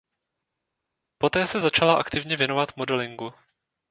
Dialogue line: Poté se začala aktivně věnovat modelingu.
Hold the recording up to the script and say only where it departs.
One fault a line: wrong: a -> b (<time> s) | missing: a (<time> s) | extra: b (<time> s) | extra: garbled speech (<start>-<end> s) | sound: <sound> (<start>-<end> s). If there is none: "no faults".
no faults